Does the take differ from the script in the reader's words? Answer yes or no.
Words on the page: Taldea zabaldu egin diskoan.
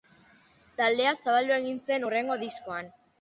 yes